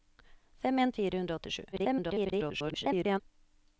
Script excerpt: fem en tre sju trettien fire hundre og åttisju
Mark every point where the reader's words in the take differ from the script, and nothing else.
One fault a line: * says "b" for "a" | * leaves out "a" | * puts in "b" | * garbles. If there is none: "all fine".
* leaves out "tre sju trettien"
* garbles